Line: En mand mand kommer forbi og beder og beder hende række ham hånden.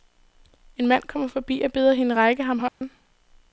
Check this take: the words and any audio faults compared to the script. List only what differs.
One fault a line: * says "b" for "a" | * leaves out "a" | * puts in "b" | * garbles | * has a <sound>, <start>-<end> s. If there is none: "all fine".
* leaves out "mand"
* leaves out "og beder"
* has a dropout, 2.7-2.8 s